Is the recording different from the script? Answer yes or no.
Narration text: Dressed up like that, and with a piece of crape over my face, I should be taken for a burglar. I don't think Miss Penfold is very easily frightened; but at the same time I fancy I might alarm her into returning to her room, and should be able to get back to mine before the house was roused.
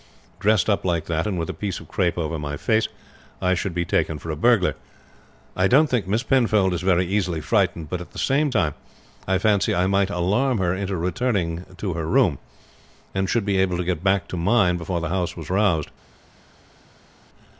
no